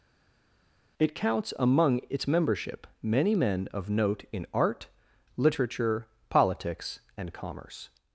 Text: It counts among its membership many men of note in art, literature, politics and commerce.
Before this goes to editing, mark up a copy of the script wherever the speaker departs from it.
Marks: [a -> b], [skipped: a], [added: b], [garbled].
It counts among its membership many men of note in art, literature, politics and commerce.